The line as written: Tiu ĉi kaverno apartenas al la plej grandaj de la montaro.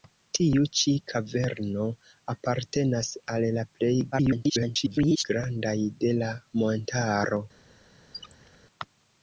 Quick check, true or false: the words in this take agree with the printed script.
false